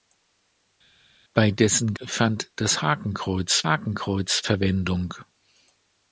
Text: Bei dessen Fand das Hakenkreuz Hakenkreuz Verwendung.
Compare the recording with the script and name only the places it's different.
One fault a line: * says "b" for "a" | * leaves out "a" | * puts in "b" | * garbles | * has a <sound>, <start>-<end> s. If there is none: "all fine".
all fine